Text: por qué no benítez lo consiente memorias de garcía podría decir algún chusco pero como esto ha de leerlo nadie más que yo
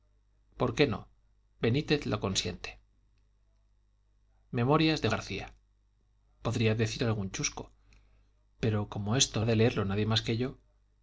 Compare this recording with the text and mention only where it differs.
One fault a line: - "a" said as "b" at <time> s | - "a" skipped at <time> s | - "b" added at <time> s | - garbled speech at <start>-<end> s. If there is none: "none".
none